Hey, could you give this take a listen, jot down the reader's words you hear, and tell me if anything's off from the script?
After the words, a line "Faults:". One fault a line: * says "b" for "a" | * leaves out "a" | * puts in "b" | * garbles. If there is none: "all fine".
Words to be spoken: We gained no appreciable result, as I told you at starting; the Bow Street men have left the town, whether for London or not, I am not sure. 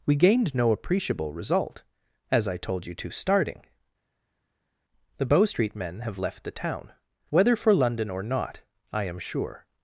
We gained no appreciable result, as I told you to starting; the Bow Street men have left the town, whether for London or not, I am sure.
Faults:
* says "to" for "at"
* leaves out "not"